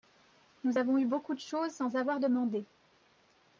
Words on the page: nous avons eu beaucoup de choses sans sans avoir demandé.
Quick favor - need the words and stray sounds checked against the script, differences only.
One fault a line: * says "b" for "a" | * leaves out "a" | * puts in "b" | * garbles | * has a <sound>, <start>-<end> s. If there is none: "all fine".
* leaves out "sans"